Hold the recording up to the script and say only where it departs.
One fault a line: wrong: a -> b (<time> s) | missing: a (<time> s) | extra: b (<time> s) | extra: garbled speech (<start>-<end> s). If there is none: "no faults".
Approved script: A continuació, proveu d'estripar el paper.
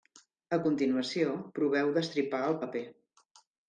no faults